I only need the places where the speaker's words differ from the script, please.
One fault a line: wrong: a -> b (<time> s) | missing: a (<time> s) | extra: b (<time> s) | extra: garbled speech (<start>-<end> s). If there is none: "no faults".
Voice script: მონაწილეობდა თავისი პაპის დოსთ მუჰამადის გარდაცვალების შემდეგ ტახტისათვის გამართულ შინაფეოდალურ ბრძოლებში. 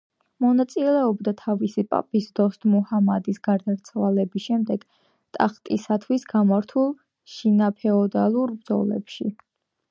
no faults